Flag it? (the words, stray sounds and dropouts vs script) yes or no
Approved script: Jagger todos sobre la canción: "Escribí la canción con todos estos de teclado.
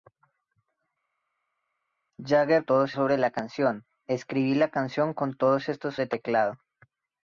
no